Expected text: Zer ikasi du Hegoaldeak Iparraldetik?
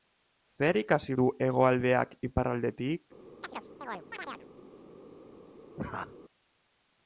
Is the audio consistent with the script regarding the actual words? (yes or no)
yes